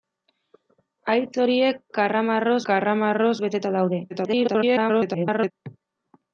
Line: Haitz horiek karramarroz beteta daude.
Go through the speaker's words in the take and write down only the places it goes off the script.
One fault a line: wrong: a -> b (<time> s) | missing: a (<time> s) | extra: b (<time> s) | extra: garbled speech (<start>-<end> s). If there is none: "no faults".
extra: karramarroz (2.7 s)
extra: garbled speech (4.1-5.5 s)